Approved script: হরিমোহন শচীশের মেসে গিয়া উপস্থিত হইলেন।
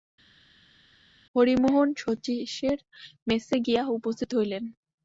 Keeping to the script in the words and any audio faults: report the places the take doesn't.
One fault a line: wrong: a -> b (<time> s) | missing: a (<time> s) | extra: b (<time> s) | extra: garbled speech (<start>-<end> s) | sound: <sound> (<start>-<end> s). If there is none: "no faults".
no faults